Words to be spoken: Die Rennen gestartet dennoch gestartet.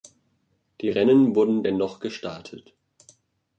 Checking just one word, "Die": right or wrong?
right